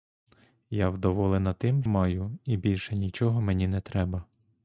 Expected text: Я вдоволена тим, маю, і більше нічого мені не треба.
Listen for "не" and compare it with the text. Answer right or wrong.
right